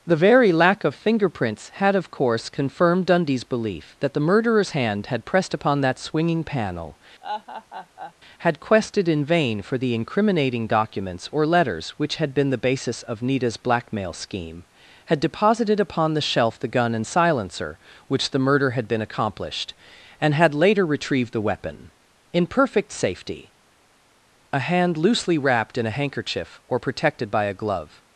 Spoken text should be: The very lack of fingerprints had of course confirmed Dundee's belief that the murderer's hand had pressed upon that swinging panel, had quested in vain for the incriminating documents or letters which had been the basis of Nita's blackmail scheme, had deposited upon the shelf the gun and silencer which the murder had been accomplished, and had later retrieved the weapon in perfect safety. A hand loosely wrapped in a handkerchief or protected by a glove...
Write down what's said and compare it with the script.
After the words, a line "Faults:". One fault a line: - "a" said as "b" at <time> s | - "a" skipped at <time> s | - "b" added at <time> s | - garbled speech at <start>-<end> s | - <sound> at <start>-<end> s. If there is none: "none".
The very lack of fingerprints had of course confirmed Dundee's belief that the murderer's hand had pressed upon that swinging panel, had quested in vain for the incriminating documents or letters which had been the basis of Nita's blackmail scheme, had deposited upon the shelf the gun and silencer which the murder had been accomplished, and had later retrieved the weapon in perfect safety. A hand loosely wrapped in a handkerchief or protected by a glove...
Faults:
- laugh at 7.2-8.1 s